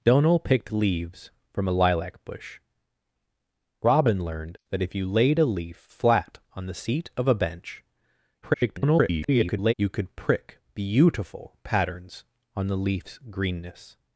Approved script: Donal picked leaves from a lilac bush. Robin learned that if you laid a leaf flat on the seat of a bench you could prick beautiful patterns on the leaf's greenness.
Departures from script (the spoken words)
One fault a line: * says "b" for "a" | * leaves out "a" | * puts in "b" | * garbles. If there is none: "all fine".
* garbles